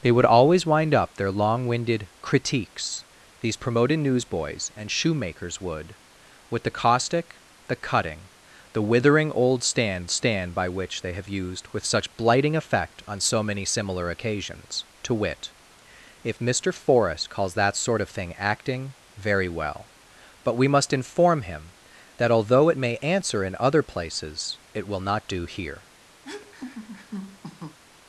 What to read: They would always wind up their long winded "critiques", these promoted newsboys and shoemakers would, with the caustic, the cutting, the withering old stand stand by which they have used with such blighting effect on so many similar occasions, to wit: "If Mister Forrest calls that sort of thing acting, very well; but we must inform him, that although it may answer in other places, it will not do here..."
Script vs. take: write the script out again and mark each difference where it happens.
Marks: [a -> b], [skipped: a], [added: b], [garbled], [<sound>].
They would always wind up their long winded "critiques", these promoted newsboys and shoemakers would, with the caustic, the cutting, the withering old stand stand by which they have used with such blighting effect on so many similar occasions, to wit: "If Mister Forrest calls that sort of thing acting, very well; but we must inform him, that although it may answer in other places, it will not do here..." [laugh]